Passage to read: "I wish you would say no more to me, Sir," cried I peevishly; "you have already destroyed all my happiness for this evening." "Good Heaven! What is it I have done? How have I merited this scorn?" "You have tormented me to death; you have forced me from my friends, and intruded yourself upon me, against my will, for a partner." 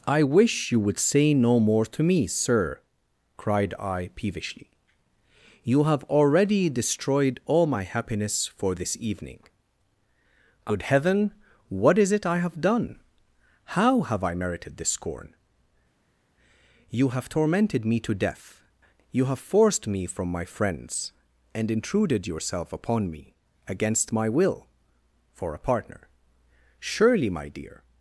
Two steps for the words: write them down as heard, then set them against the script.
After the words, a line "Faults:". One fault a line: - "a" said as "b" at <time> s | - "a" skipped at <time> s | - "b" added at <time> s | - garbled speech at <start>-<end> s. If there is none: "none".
"I wish you would say no more to me, Sir," cried I peevishly; "you have already destroyed all my happiness for this evening." "Good Heaven! What is it I have done? How have I merited this scorn?" "You have tormented me to death; you have forced me from my friends, and intruded yourself upon me, against my will, for a partner." "Surely, my dear
Faults:
- "Surely my dear" added at 26.8 s